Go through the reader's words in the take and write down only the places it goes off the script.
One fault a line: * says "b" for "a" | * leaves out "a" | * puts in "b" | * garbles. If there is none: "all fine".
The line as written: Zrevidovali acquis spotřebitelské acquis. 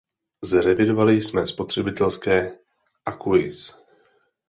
* says "jsme" for "acquis"